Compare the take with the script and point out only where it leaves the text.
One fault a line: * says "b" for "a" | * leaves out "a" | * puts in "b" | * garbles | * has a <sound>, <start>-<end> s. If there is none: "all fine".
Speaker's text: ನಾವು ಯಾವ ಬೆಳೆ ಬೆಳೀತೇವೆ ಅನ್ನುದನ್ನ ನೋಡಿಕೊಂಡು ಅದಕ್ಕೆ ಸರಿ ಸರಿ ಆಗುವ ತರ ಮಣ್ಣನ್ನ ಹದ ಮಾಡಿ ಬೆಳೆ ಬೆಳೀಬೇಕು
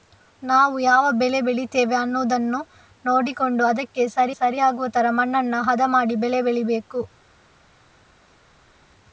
all fine